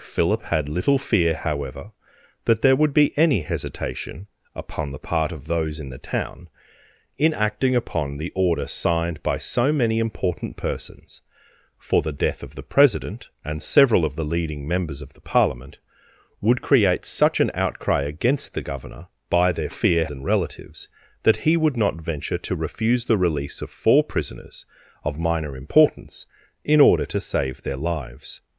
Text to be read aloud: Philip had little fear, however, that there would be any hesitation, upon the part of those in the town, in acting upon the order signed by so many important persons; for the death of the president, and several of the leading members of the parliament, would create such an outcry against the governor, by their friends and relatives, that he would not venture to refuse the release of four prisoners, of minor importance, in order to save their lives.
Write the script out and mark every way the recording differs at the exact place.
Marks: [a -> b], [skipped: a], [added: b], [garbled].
Philip had little fear, however, that there would be any hesitation, upon the part of those in the town, in acting upon the order signed by so many important persons; for the death of the president, and several of the leading members of the parliament, would create such an outcry against the governor, by their [friends -> fear] and relatives, that he would not venture to refuse the release of four prisoners, of minor importance, in order to save their lives.